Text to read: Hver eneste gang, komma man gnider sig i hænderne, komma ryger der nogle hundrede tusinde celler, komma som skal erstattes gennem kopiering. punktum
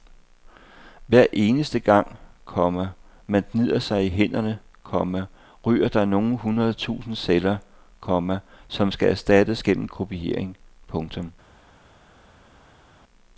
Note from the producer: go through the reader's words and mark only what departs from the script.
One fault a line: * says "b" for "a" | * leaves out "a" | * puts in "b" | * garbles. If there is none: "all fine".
all fine